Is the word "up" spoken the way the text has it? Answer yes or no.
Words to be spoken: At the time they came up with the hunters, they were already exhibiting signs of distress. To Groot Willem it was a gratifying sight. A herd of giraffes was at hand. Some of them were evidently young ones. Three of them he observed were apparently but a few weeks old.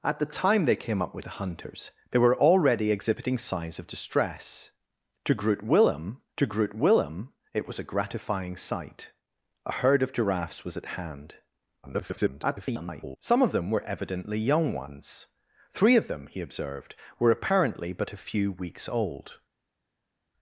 yes